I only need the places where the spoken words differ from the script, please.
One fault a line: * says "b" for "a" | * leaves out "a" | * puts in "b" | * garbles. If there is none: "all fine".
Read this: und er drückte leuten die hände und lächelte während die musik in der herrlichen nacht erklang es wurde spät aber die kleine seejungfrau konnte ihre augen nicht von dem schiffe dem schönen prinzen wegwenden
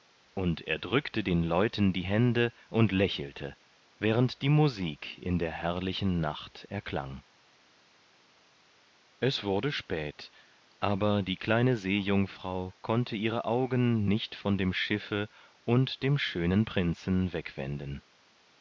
* puts in "den"
* puts in "und"